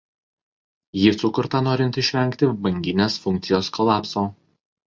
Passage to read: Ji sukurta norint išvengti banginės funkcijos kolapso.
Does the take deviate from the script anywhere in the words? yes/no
no